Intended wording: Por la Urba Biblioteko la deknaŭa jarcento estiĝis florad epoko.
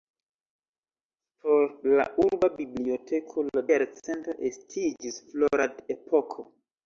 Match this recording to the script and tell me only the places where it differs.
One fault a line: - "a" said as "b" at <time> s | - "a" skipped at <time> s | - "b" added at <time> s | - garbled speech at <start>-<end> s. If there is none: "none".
- "deknaŭa" skipped at 3.6 s